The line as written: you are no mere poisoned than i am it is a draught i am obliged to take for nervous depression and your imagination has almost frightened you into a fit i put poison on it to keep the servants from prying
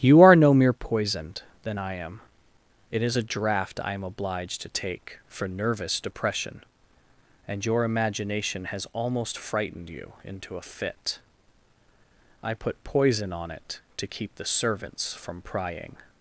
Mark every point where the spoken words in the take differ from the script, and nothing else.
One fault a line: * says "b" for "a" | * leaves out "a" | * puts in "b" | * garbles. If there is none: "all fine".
all fine